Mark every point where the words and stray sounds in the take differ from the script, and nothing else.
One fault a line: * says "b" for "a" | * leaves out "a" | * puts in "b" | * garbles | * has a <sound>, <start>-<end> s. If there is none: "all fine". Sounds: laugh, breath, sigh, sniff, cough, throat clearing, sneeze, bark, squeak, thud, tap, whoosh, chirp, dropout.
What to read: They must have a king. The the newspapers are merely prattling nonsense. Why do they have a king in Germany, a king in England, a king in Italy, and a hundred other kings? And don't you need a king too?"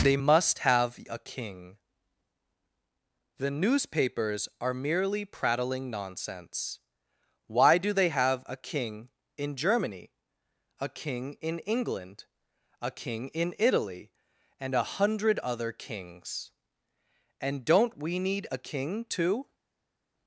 * leaves out "the"
* says "we" for "you"